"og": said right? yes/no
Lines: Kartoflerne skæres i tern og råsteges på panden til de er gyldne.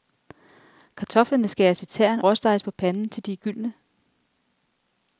no